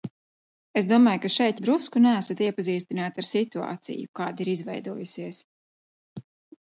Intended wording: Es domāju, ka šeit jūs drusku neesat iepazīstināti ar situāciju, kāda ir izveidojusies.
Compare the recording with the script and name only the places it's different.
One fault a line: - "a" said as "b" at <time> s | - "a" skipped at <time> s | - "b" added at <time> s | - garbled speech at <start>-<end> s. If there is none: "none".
- "jūs" skipped at 1.6 s